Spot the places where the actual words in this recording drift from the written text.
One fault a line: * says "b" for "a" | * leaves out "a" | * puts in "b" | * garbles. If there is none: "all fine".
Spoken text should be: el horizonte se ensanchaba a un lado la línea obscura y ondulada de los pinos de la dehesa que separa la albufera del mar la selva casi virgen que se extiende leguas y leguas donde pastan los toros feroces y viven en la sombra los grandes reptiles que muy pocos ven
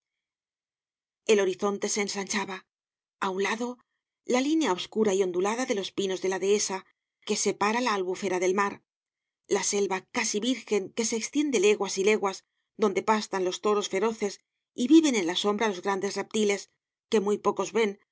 all fine